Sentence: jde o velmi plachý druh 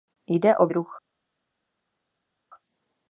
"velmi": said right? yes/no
no